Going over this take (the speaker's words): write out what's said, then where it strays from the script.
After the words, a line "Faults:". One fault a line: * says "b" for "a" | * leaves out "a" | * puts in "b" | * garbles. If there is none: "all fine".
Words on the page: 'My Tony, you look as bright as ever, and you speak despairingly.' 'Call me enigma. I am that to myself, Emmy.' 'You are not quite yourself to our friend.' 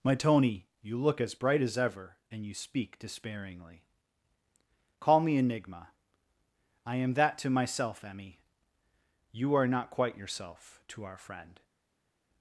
'My Tony, you look as bright as ever, and you speak despairingly.' 'Call me enigma. I am that to myself, Emmy.' 'You are not quite yourself to our friend.'
Faults:
all fine